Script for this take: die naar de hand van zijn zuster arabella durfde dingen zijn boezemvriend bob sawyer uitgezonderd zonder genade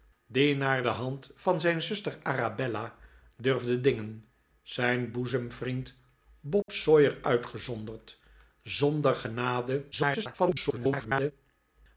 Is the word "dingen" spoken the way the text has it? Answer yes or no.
yes